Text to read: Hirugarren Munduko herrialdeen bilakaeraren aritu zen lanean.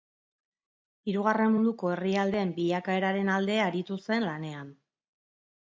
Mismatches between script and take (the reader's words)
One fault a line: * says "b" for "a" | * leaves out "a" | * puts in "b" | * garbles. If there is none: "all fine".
* puts in "alde"